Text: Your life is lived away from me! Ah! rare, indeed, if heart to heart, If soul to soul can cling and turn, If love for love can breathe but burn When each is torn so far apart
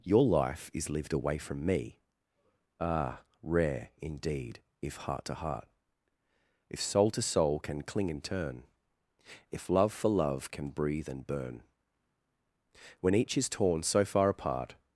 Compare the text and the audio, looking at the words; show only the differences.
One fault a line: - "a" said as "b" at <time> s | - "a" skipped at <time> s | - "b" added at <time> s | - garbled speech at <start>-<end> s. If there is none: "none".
- "but" said as "and" at 11.1 s